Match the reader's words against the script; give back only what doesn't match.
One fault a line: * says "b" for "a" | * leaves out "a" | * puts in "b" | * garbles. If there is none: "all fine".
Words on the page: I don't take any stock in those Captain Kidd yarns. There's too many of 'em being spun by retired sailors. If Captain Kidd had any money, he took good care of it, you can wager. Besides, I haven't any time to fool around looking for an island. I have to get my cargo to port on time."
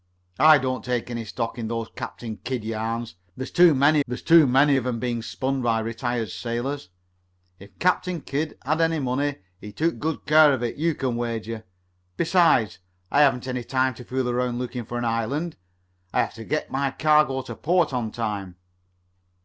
* puts in "there's too many"